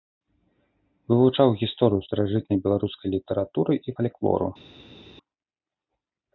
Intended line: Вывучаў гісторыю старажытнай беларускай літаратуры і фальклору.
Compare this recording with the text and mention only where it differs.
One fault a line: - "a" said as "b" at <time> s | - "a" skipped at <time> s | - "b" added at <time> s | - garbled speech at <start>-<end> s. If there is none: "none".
none